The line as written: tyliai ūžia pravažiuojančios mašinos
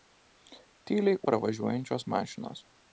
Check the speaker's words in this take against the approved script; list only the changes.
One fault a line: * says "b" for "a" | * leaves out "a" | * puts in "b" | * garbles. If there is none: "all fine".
* leaves out "ūžia"